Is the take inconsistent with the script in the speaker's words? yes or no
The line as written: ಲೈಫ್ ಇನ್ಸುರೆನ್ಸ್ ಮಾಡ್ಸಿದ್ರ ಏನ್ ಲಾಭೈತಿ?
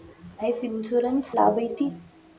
yes